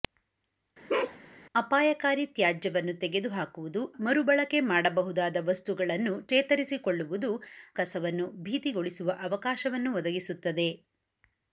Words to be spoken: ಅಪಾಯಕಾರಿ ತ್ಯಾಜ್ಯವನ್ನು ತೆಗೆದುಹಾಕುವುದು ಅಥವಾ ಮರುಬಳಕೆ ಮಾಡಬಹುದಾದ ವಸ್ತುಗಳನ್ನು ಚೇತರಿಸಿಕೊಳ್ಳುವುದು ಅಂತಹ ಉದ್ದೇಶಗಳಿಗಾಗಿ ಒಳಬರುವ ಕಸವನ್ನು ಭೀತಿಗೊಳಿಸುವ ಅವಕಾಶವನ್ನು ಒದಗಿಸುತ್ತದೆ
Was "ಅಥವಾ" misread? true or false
true